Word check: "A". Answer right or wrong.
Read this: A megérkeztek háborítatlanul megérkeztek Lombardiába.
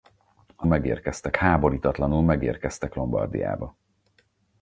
right